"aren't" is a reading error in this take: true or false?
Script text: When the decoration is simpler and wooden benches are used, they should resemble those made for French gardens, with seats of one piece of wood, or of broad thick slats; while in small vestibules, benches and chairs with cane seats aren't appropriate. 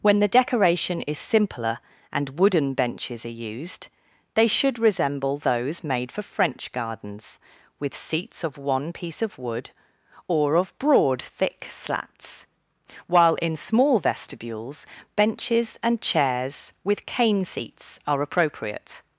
true